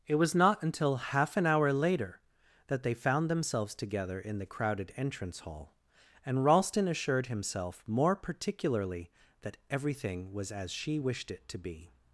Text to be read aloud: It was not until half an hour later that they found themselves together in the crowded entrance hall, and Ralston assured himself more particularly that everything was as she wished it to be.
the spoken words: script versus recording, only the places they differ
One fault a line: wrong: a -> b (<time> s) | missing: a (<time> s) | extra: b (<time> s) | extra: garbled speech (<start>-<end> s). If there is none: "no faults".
no faults